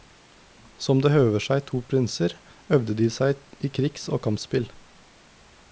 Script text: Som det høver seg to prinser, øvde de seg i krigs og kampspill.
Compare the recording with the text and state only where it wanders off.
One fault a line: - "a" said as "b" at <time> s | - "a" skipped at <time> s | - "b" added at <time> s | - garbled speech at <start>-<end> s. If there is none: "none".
none